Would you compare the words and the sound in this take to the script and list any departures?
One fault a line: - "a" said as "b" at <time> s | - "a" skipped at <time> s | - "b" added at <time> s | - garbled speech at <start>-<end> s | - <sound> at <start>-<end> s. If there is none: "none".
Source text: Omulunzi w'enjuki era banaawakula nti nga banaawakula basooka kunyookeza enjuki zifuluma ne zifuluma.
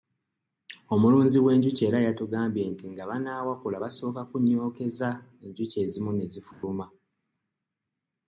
- "banaawakula" said as "yatugambye" at 2.0 s
- "zifuluma" said as "ezimu" at 5.8 s
- dropout at 6.5-6.6 s